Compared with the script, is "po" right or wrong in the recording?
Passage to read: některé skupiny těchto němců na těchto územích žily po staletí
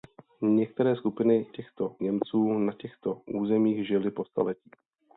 right